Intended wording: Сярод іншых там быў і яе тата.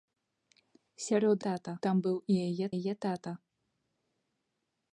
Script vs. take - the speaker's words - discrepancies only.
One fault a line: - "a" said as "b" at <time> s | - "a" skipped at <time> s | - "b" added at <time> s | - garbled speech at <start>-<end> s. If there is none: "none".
- "іншых" said as "тата" at 1.5 s
- "яе" added at 2.8 s